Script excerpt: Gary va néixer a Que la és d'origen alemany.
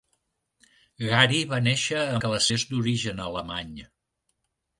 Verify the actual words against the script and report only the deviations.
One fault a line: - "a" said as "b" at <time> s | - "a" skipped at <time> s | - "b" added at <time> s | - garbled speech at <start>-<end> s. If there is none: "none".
none